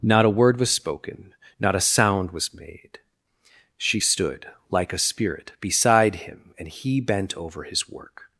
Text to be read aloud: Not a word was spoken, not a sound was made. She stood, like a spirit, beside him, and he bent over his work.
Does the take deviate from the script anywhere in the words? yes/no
no